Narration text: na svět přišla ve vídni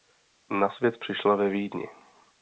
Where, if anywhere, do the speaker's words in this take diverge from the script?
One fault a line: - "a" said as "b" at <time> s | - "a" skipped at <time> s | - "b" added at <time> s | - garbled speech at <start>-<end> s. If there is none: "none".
none